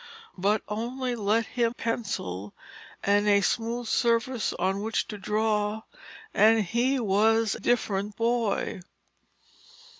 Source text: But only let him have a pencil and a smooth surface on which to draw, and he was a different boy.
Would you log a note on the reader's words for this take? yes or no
yes